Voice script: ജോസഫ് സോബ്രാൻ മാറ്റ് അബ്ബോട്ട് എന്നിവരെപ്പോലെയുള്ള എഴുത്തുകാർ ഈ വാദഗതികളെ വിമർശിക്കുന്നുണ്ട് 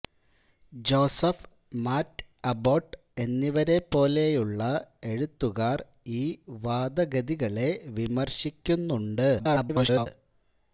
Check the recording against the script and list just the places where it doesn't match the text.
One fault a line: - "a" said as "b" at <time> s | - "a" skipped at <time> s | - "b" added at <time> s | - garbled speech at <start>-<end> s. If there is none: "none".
- "സോബ്രാൻ" skipped at 1.4 s
- garbled speech at 9.4-10.1 s